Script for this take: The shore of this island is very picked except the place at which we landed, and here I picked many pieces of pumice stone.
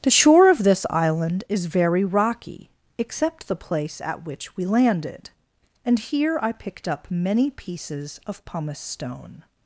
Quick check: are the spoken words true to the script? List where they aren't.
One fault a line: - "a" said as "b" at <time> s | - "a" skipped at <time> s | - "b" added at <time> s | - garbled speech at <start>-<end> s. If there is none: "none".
- "picked" said as "rocky" at 2.0 s
- "up" added at 6.9 s